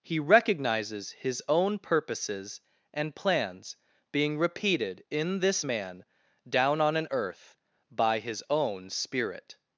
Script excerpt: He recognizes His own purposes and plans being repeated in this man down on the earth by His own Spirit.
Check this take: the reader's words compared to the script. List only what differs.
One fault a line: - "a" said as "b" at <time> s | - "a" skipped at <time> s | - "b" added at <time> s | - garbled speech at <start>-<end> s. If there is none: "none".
- "the" said as "an" at 7.0 s